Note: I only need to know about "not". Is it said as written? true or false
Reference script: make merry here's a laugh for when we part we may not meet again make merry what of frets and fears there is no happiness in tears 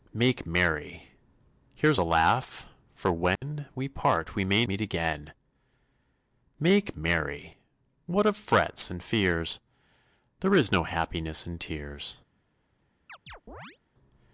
false